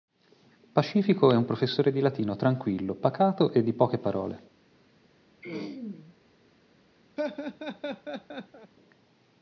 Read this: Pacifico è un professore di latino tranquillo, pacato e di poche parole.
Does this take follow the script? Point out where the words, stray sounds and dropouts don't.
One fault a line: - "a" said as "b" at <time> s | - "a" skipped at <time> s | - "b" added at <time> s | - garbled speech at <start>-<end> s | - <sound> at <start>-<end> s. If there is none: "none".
- throat clearing at 5.4-6.2 s
- laugh at 7.2-8.7 s